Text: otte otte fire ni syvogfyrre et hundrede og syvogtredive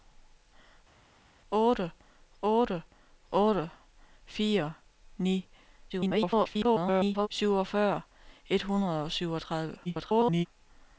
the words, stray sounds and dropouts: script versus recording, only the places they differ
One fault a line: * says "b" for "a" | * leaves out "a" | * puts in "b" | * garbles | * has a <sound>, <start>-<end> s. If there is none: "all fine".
* puts in "otte"
* garbles
* garbles